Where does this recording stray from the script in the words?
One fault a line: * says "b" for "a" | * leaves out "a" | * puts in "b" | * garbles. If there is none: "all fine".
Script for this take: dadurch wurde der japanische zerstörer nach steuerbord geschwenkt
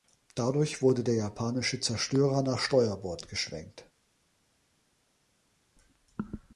all fine